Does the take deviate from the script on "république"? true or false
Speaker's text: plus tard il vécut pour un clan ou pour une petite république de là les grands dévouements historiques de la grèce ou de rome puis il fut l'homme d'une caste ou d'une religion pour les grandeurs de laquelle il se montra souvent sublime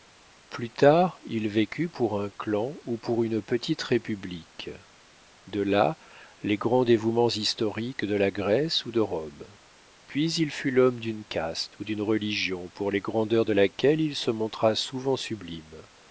false